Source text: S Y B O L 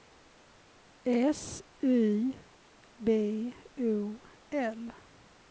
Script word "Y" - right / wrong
right